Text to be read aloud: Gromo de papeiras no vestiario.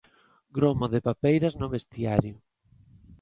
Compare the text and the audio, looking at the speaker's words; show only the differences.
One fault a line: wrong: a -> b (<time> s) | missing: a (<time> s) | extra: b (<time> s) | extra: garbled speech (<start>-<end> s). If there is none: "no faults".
no faults